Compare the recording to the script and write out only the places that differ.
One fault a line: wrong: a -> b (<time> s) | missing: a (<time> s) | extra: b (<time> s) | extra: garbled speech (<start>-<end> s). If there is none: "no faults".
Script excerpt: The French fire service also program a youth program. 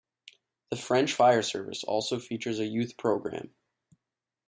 wrong: program -> features (2.2 s)